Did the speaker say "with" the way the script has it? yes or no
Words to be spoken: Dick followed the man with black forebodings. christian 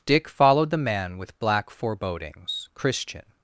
yes